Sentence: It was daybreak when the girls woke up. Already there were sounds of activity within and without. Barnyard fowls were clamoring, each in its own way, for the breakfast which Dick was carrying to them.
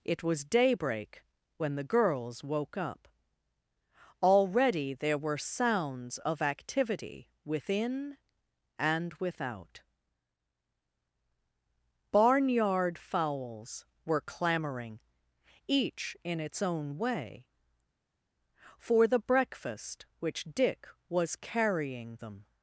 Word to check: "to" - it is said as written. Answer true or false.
false